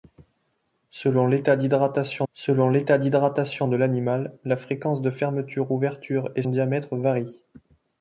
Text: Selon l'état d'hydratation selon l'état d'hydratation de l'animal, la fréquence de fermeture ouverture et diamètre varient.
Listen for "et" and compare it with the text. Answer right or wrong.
right